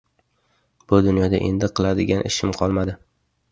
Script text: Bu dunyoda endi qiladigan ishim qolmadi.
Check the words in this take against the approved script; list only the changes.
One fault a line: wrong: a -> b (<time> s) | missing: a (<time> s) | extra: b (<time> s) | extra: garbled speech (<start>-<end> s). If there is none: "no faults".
no faults